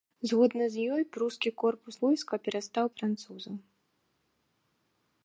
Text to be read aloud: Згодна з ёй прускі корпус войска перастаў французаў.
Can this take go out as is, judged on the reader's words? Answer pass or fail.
pass